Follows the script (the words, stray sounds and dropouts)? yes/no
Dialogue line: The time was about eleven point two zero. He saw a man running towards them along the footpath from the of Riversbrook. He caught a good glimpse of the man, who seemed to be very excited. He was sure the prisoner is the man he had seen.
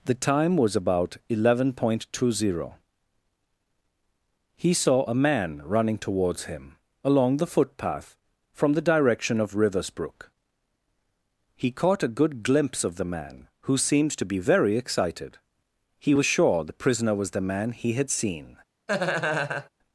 no